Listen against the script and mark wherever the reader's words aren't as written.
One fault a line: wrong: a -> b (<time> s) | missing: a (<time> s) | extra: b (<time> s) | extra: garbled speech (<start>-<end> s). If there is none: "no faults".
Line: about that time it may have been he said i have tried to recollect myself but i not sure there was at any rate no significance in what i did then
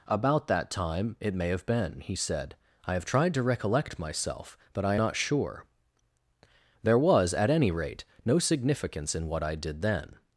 no faults